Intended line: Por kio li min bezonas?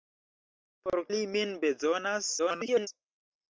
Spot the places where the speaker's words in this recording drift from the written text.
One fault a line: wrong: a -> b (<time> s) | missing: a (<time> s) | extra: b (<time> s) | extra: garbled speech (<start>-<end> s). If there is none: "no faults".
missing: kio (1.0 s)
extra: garbled speech (2.4-2.9 s)